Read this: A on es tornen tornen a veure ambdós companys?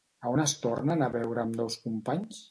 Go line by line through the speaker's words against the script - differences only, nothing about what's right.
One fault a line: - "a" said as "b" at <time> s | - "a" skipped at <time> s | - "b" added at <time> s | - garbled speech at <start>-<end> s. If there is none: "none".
- "tornen" skipped at 1.0 s